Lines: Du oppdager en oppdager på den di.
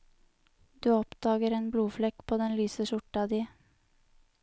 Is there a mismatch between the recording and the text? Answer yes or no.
yes